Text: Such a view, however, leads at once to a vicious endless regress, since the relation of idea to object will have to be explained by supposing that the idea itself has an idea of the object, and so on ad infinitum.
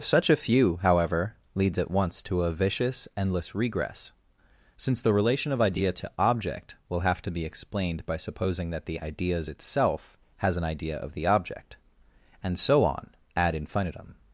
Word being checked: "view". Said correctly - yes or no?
no